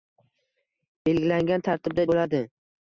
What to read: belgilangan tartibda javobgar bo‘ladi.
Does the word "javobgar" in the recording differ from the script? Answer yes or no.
yes